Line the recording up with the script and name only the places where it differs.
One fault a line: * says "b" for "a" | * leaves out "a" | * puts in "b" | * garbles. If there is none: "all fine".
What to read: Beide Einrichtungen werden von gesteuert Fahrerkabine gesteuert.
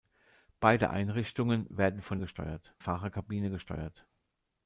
all fine